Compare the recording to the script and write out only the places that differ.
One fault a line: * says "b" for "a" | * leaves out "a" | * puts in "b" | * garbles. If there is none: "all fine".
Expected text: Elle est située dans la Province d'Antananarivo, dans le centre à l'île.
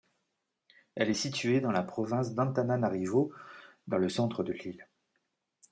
* says "de" for "à"